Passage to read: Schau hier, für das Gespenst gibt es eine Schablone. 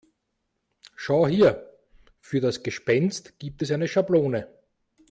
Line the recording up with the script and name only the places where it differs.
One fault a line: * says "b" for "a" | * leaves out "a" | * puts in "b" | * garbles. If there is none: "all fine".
all fine